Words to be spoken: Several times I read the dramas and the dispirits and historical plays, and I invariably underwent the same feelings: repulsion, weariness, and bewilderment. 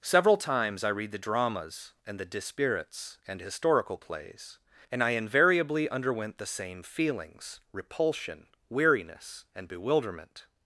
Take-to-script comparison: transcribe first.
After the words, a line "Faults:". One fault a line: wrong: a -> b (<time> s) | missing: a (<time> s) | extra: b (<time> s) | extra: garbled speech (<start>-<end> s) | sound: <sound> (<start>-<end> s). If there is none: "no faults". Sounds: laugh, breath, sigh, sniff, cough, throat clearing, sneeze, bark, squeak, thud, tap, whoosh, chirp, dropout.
Several times I read the dramas and the dispirits and historical plays, and I invariably underwent the same feelings: repulsion, weariness, and bewilderment.
Faults:
no faults